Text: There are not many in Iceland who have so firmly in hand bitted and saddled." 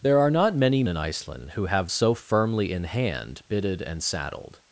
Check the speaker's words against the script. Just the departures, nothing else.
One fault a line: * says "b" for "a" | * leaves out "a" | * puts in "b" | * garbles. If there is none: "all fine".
all fine